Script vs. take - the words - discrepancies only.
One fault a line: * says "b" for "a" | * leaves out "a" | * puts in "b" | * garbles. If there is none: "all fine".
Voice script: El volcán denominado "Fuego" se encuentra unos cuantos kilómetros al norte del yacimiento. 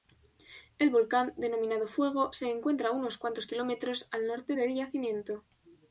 all fine